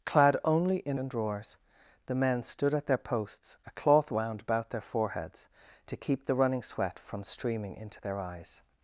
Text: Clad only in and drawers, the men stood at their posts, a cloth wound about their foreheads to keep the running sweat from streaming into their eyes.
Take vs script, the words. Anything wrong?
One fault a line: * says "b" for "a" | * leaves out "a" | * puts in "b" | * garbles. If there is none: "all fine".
all fine